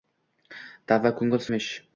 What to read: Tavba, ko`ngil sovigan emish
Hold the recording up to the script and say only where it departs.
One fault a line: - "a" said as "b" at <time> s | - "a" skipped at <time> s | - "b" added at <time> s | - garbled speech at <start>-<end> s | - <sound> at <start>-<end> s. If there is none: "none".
- "sovigan" skipped at 1.4 s